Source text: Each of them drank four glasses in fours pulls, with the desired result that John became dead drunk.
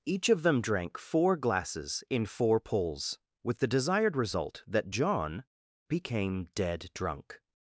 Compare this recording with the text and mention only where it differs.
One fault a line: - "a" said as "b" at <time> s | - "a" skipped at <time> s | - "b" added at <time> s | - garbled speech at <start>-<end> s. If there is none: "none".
- "fours" said as "four" at 2.2 s